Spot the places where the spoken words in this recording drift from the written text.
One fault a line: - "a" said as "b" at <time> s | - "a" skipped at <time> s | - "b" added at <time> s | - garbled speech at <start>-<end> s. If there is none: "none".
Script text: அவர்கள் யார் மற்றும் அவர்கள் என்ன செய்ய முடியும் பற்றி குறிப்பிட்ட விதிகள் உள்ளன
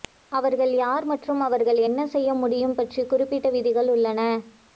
none